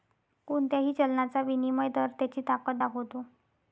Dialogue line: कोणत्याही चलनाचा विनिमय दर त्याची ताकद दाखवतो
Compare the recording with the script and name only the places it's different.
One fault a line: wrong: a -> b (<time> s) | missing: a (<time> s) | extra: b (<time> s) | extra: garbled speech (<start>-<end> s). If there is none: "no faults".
no faults